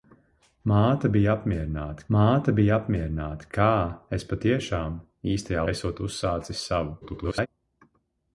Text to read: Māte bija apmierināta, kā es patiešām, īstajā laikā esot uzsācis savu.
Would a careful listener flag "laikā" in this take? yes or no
yes